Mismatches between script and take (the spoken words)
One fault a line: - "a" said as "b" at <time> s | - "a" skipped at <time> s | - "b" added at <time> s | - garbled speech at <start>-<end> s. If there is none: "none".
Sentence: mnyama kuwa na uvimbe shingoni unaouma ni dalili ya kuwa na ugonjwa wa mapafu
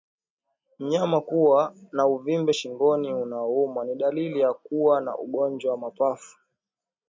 none